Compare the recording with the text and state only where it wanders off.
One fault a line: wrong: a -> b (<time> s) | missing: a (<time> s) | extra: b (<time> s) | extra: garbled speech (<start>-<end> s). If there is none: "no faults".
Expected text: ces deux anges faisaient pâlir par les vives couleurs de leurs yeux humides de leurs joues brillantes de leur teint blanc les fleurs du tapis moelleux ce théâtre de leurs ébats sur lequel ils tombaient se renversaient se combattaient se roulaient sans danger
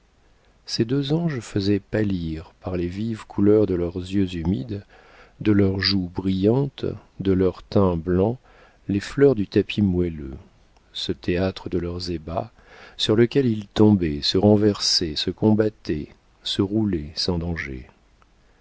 no faults